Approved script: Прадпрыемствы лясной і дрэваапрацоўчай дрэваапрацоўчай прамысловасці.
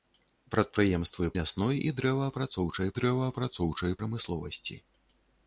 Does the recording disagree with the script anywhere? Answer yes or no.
no